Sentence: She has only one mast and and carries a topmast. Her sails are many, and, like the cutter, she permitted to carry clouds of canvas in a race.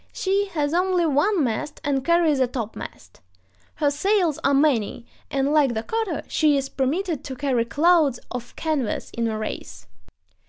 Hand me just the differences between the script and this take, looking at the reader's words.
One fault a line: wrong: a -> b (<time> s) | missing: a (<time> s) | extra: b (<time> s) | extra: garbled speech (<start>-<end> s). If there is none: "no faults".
missing: and (2.0 s)
extra: is (6.6 s)